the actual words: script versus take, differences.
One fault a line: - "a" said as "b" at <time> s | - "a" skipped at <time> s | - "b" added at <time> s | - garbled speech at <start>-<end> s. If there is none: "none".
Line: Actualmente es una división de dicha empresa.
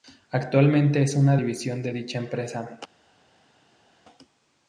none